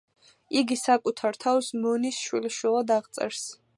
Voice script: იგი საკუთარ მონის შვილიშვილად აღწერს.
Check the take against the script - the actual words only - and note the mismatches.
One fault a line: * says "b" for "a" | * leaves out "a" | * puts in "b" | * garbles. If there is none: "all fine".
* puts in "თავს"